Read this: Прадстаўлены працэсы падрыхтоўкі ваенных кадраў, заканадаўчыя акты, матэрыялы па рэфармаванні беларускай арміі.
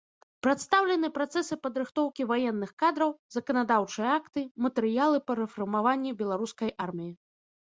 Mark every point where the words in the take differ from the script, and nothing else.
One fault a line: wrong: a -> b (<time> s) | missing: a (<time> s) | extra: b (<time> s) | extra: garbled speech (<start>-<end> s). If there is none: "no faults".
no faults